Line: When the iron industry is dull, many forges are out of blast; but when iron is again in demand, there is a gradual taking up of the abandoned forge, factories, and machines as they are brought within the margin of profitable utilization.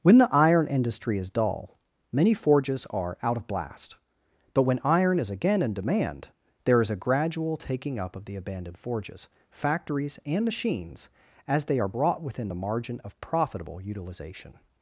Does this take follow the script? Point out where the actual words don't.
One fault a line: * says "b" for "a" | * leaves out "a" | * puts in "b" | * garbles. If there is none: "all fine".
* says "forges" for "forge"